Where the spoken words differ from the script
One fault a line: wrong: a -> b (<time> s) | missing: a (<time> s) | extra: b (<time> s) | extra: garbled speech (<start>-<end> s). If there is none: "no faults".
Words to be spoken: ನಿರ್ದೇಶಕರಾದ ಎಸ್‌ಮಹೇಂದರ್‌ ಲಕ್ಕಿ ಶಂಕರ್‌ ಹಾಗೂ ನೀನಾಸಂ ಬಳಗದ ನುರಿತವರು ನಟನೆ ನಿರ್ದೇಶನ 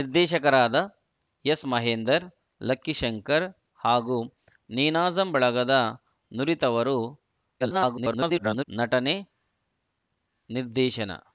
extra: garbled speech (7.6-8.6 s)